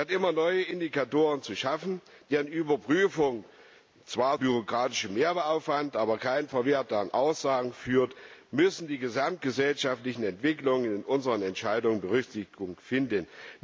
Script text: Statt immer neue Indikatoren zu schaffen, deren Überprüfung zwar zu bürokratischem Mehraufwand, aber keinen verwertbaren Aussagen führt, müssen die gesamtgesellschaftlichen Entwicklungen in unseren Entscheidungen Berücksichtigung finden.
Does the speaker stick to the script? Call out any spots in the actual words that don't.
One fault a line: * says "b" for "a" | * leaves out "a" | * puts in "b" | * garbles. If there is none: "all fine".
* leaves out "zu"